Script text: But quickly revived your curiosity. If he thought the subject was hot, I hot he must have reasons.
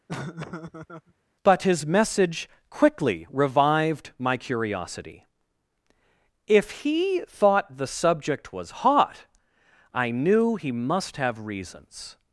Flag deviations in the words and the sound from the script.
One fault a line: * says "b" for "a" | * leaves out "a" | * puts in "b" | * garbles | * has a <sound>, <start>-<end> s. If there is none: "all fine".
* has a laugh, 0.1-1.1 s
* puts in "his message"
* says "my" for "your"
* says "knew" for "hot"